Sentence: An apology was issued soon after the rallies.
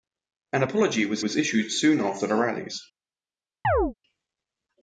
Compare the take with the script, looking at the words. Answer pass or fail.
fail